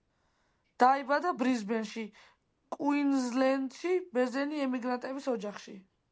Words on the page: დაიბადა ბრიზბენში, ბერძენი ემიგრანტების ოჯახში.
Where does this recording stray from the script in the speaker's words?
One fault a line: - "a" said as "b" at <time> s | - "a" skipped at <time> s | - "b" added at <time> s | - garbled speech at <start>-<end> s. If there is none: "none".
- "კუინზლენდში" added at 2.8 s